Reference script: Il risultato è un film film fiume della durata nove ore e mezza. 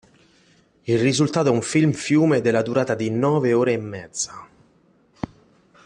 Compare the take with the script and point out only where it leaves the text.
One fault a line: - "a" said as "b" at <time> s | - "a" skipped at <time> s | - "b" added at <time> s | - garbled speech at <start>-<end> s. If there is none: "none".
- "film" skipped at 1.9 s
- "di" added at 2.9 s